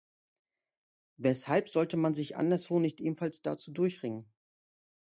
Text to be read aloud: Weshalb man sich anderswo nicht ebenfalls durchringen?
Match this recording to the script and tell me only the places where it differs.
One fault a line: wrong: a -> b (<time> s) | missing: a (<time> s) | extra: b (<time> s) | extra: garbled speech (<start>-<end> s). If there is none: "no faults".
extra: sollte (1.7 s)
extra: dazu (3.4 s)